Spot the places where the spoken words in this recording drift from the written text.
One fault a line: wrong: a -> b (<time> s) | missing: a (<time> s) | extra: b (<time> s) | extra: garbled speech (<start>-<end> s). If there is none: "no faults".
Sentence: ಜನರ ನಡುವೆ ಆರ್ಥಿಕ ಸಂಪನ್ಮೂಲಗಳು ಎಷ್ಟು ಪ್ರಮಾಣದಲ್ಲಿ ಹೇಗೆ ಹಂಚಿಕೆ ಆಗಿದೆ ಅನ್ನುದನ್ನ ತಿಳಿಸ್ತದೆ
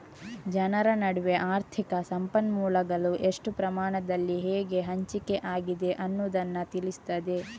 no faults